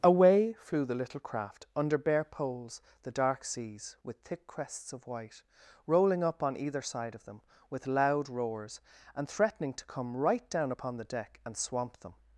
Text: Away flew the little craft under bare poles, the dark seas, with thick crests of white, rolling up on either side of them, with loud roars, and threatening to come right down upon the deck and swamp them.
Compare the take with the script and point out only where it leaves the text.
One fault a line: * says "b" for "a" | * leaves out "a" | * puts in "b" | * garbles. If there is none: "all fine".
all fine